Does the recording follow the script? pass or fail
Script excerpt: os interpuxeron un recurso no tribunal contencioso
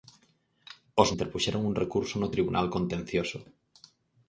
pass